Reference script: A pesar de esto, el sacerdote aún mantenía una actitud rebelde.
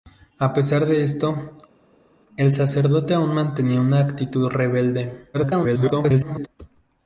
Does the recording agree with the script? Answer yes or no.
no